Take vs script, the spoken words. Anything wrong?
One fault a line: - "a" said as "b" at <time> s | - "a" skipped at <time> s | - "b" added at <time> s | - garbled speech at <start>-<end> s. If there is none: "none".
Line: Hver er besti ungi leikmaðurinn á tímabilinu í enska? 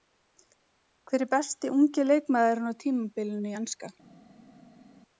none